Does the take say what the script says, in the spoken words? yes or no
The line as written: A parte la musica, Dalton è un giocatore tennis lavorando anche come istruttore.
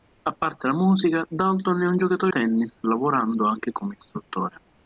yes